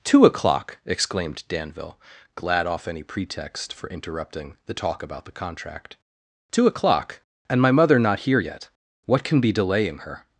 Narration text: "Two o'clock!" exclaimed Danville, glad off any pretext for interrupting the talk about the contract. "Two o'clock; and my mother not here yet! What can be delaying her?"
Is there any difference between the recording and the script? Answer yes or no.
no